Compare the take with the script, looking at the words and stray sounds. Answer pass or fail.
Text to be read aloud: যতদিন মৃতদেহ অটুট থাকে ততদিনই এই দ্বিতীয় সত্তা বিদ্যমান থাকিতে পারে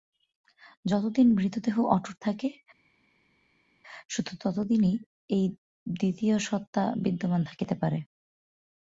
fail